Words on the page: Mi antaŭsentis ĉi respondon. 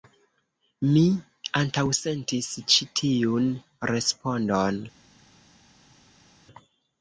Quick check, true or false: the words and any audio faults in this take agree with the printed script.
false